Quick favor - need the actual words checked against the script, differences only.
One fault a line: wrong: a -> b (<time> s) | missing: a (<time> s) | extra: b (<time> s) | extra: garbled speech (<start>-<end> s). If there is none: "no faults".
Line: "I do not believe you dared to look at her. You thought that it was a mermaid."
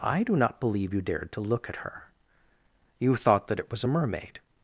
no faults